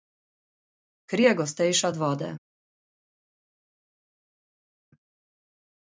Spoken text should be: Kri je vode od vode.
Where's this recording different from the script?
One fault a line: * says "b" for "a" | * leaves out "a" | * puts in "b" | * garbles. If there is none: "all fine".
* says "gostejša" for "vode"